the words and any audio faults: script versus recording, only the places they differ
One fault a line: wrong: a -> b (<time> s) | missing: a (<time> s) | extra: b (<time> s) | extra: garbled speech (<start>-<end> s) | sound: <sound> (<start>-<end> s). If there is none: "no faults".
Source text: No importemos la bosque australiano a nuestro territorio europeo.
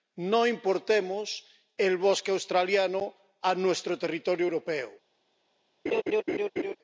wrong: la -> el (1.8 s)
sound: laugh (5.9-6.8 s)